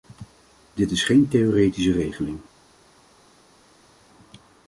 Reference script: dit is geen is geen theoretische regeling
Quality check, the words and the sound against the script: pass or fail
fail